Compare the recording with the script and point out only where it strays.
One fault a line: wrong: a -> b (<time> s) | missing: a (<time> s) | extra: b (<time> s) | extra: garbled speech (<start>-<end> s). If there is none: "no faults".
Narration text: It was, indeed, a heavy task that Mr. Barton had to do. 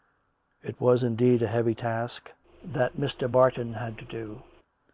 no faults